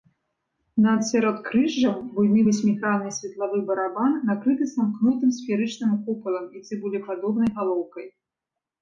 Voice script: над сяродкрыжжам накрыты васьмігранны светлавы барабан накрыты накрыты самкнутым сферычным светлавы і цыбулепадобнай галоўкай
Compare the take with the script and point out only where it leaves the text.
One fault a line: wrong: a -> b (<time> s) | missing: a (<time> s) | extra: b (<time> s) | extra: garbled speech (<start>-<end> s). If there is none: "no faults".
wrong: накрыты -> буйны (2.1 s)
missing: накрыты (4.7 s)
wrong: светлавы -> купалам (6.1 s)